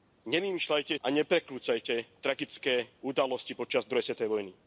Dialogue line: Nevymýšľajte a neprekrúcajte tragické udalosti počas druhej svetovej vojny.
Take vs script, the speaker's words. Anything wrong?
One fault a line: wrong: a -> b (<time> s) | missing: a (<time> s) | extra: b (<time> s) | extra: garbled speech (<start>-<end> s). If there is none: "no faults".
no faults